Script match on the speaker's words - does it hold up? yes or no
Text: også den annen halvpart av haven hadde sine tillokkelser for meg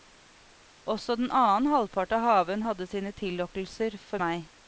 yes